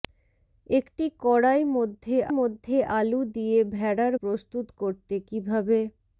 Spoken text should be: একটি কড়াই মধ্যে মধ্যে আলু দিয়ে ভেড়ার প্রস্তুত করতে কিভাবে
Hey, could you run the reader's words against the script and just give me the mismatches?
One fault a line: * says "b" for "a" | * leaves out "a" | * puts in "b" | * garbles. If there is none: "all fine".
all fine